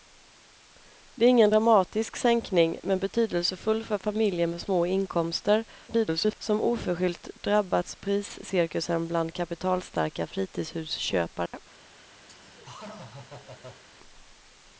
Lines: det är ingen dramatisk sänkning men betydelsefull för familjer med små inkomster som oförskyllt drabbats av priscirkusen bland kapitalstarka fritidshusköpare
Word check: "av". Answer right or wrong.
wrong